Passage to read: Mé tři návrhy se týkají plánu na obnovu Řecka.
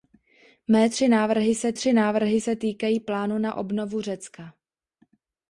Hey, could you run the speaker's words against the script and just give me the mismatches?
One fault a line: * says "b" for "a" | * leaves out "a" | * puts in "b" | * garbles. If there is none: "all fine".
* puts in "tři návrhy se"